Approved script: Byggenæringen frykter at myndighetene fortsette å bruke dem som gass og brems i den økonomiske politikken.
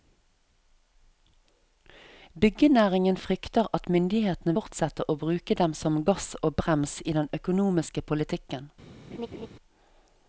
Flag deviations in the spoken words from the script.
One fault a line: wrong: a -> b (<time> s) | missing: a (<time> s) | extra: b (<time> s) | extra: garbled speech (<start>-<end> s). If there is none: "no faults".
no faults